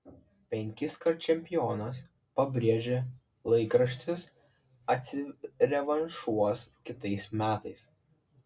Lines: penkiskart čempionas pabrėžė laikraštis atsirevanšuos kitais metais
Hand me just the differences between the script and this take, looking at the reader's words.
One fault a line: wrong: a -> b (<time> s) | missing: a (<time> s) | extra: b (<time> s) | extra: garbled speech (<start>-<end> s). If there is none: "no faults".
no faults